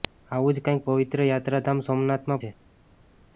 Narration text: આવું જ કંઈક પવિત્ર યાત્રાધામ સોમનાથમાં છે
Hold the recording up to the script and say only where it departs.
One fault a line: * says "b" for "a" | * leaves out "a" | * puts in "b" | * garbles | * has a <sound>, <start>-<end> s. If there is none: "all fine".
all fine